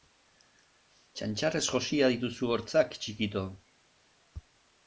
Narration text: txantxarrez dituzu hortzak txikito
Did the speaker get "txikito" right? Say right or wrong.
right